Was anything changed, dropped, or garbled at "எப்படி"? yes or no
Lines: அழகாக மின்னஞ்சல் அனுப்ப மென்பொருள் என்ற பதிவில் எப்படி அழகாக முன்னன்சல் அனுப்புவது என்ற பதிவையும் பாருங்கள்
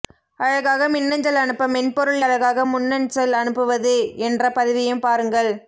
yes